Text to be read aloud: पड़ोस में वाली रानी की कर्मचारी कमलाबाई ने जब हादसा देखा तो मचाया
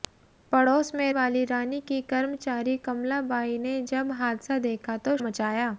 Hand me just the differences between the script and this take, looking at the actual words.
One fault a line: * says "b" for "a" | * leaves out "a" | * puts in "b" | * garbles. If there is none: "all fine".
all fine